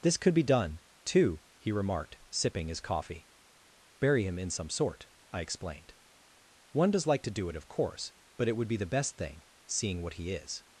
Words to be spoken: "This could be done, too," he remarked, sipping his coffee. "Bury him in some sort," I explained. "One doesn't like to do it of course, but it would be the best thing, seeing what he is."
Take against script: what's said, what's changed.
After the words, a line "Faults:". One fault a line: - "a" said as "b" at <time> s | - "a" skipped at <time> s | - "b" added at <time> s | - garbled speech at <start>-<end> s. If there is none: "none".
"This could be done, too," he remarked, sipping his coffee. "Bury him in some sort," I explained. "One does like to do it of course, but it would be the best thing, seeing what he is."
Faults:
- "doesn't" said as "does" at 6.9 s